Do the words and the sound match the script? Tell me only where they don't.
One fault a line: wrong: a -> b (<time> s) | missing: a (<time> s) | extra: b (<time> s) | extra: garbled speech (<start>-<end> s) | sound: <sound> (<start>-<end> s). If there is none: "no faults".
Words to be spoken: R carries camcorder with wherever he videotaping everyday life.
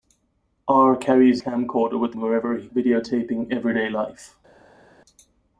no faults